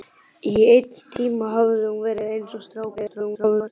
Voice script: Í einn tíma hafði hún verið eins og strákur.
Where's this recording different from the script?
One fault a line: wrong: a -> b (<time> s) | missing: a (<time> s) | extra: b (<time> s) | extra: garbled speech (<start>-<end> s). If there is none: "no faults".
extra: garbled speech (3.0-3.7 s)